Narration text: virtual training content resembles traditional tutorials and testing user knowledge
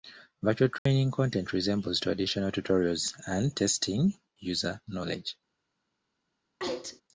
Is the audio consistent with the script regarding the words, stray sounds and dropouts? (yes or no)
no